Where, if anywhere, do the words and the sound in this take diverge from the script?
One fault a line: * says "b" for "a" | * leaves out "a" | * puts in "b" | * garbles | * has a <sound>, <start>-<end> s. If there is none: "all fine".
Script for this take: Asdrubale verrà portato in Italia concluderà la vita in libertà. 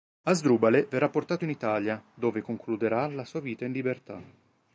* puts in "dove"
* puts in "sua"